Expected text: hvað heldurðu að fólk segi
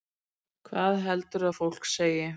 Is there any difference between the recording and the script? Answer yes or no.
no